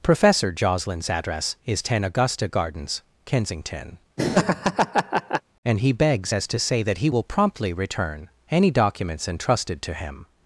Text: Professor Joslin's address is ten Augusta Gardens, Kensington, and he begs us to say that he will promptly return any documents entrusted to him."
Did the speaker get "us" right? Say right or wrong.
wrong